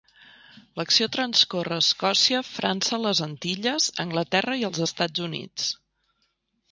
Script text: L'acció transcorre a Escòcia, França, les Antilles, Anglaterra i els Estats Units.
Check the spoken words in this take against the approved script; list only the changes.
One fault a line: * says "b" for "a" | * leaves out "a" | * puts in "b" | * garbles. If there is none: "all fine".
all fine